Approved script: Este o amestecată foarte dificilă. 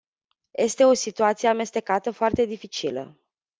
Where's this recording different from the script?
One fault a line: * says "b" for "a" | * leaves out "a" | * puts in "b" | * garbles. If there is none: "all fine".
* puts in "situație"